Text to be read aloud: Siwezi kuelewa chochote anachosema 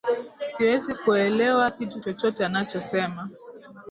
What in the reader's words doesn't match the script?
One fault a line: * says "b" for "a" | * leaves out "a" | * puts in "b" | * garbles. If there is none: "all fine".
* puts in "kitu"